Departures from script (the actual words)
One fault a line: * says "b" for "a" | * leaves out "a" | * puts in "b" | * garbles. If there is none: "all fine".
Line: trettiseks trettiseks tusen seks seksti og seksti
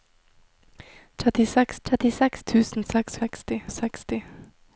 all fine